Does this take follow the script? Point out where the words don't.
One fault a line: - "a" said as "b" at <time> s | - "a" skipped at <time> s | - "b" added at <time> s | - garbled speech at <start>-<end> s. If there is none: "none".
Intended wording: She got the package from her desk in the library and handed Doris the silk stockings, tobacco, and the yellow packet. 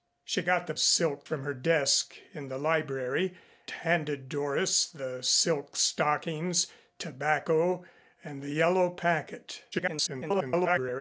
- "package" said as "silk" at 0.8 s
- "and" skipped at 3.4 s
- garbled speech at 9.7-11.0 s